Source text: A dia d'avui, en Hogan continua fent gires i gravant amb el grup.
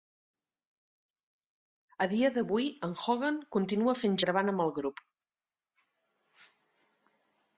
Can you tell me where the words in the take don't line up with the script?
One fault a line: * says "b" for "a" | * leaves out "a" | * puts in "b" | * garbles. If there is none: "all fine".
* leaves out "gires"